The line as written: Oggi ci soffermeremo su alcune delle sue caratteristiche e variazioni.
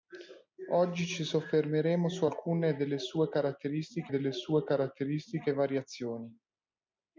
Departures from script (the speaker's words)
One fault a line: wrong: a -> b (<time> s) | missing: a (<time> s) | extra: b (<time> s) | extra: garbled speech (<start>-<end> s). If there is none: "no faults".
extra: delle sue caratteristiche (4.1 s)